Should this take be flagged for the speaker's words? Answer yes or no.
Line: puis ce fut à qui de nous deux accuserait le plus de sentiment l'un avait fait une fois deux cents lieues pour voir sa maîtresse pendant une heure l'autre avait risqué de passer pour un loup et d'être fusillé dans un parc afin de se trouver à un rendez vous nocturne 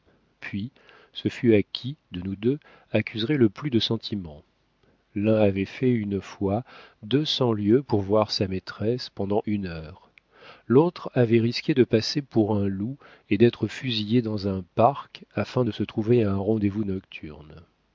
no